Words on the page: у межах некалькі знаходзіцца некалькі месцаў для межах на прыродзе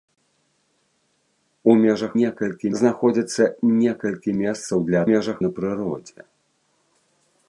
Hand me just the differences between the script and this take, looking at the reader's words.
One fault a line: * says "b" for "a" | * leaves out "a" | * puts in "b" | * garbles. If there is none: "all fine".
all fine